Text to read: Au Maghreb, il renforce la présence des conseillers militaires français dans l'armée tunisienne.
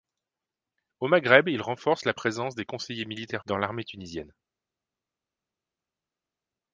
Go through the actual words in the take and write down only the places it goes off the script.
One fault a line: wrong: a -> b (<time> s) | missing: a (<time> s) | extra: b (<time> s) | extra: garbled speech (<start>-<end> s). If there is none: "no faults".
missing: français (3.5 s)